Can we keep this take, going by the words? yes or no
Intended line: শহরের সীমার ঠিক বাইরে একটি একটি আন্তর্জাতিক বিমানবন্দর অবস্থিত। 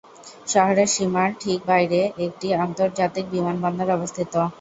no